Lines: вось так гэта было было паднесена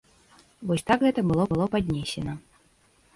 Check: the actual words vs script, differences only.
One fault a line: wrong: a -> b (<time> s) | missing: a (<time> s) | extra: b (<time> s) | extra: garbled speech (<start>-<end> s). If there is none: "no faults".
no faults